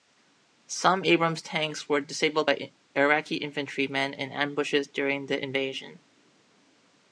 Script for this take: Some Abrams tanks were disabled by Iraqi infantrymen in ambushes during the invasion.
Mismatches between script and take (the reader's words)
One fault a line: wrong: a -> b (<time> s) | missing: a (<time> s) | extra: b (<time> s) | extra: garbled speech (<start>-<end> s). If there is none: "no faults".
no faults